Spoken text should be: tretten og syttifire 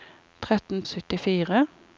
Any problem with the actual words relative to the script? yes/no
no